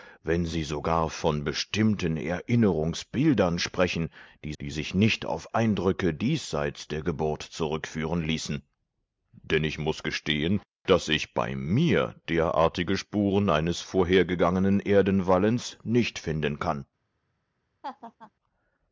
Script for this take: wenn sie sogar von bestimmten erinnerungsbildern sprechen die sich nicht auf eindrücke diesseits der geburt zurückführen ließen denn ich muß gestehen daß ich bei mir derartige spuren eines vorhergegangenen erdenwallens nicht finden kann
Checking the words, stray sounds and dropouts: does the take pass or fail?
fail